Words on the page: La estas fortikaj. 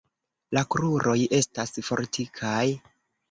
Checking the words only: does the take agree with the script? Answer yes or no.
no